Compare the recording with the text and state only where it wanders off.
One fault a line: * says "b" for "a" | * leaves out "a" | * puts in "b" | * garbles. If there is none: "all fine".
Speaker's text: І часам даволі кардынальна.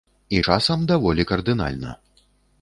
all fine